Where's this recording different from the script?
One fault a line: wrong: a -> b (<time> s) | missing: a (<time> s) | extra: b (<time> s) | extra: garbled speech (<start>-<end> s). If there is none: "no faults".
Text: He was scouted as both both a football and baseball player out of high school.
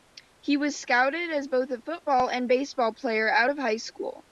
missing: both (1.7 s)